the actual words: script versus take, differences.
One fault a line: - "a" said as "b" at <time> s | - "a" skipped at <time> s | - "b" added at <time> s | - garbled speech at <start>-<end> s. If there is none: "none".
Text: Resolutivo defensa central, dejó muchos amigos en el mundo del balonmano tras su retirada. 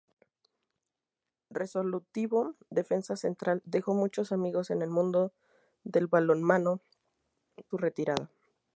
- "tras" skipped at 6.8 s